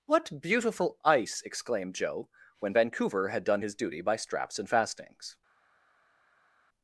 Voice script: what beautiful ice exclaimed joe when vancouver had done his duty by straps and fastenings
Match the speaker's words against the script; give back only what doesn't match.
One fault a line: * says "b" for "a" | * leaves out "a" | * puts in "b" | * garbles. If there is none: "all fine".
all fine